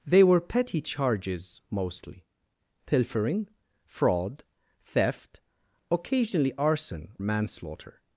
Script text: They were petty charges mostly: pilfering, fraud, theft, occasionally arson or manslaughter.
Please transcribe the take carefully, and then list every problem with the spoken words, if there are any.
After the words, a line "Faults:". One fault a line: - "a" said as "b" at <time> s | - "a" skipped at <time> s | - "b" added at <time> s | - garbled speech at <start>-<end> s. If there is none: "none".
They were petty charges mostly: pilfering, fraud, theft, occasionally arson manslaughter.
Faults:
- "or" skipped at 7.2 s